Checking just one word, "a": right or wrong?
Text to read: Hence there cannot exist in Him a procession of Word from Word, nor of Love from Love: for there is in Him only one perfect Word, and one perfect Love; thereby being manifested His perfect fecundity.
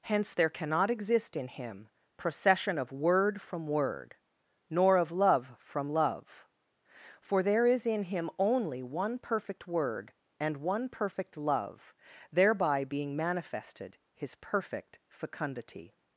wrong